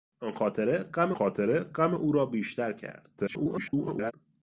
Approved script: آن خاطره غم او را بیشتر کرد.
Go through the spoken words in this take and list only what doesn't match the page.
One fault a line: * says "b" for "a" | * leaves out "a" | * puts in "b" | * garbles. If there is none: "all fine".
* puts in "خاطره غم"
* garbles